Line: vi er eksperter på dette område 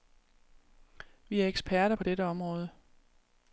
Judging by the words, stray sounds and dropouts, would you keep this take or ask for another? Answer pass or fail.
pass